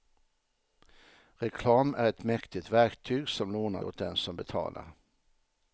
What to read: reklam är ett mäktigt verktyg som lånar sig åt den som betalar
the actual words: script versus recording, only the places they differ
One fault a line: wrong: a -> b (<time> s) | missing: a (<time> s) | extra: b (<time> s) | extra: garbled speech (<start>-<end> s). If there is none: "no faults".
missing: sig (3.8 s)